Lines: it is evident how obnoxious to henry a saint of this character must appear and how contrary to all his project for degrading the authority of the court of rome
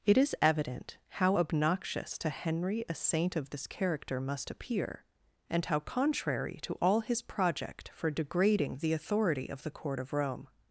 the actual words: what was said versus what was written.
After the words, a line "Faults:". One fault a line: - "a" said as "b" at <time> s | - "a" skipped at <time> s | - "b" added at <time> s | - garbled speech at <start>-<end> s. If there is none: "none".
it is evident how obnoxious to henry a saint of this character must appear and how contrary to all his project for degrading the authority of the court of rome
Faults:
none